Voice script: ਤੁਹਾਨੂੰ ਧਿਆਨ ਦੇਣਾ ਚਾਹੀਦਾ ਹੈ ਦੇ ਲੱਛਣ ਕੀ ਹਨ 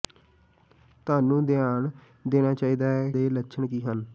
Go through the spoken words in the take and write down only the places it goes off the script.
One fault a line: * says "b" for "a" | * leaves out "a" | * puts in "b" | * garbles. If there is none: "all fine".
all fine